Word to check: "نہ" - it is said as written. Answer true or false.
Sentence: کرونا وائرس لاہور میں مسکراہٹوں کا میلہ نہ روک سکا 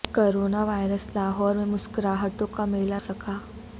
false